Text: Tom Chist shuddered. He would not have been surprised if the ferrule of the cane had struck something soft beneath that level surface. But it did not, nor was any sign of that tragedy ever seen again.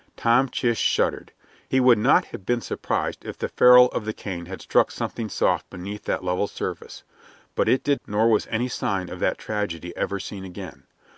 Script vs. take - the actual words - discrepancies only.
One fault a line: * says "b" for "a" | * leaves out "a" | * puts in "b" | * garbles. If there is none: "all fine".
* leaves out "not"